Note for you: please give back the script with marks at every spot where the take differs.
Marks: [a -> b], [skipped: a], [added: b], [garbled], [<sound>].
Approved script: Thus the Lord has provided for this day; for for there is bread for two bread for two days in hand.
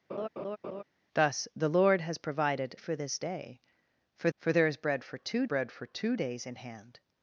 [laugh] Thus the Lord has provided for this day; for for there is bread for two bread for two days in hand.